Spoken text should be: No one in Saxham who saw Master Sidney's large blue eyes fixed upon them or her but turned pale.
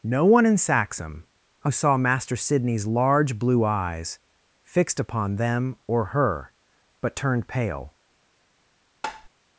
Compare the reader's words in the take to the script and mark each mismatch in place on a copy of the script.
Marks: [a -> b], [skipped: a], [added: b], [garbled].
No one in Saxham who saw Master Sidney's large blue eyes fixed upon them or her but turned pale.